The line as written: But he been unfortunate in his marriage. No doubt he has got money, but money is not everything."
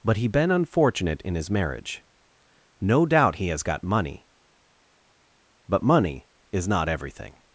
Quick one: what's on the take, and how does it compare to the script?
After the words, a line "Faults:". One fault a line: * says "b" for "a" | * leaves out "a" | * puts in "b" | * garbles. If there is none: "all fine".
But he been unfortunate in his marriage. No doubt he has got money, but money is not everything."
Faults:
all fine